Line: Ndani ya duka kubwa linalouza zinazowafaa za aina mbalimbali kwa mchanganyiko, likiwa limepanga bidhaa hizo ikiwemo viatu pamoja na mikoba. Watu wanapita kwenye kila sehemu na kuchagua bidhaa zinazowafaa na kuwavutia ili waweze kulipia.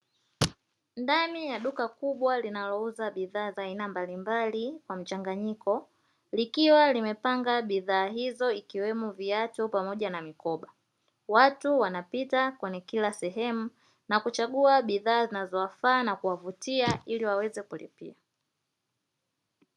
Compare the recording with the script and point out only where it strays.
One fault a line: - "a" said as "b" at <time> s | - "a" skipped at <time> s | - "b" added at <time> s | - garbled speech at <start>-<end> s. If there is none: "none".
- "zinazowafaa" said as "bidhaa" at 3.1 s